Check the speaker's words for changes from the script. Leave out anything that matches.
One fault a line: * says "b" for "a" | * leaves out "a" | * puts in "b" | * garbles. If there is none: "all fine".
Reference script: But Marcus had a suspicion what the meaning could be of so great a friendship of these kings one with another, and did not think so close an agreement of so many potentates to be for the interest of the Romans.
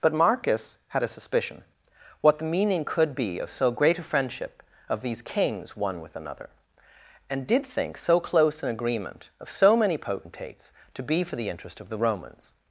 * leaves out "not"